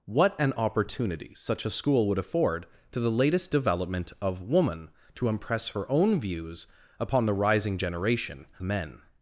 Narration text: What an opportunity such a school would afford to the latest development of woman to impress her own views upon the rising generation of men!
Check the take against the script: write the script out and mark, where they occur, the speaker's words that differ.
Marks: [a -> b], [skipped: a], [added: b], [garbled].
What an opportunity such a school would afford to the latest development of woman to impress her own views upon the rising generation [skipped: of] men!